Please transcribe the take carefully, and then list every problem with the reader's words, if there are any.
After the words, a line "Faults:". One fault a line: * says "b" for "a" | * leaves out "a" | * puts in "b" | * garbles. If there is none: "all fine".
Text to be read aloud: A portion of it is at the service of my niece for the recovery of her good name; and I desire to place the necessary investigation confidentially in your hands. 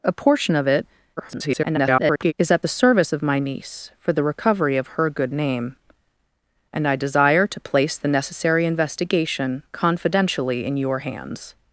A portion of it [garbled] is at the service of my niece for the recovery of her good name; and I desire to place the necessary investigation confidentially in your hands.
Faults:
* garbles